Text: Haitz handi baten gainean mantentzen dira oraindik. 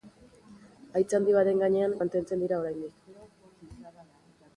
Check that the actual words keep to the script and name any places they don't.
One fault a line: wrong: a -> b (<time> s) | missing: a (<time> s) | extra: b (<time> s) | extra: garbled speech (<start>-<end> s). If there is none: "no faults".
no faults